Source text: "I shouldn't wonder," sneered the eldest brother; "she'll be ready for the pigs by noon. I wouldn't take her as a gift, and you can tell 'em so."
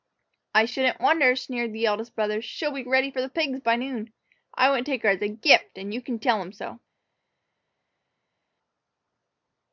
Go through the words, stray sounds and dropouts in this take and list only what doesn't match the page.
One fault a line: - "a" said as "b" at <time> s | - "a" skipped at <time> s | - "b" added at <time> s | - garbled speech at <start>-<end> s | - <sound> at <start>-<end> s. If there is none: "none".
none